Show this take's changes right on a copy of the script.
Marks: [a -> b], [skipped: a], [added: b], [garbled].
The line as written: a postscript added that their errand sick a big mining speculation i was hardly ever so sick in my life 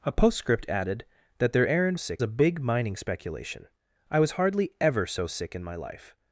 a postscript added that their errand sick a big mining speculation i was hardly ever so sick in my life